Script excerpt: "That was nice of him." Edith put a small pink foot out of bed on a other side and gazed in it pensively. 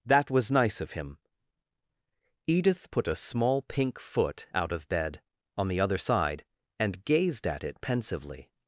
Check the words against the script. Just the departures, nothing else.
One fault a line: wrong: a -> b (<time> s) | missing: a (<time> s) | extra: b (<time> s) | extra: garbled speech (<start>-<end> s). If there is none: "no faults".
wrong: a -> the (5.7 s)
wrong: in -> at (7.5 s)